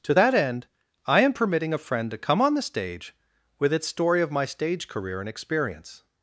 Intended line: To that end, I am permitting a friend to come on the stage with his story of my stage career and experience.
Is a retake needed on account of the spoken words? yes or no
yes